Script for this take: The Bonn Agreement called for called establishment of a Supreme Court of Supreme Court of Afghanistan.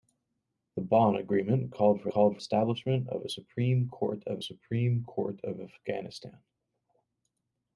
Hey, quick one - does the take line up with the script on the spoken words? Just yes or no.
yes